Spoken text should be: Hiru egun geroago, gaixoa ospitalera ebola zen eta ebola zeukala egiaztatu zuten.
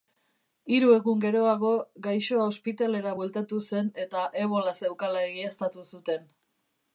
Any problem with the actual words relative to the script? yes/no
yes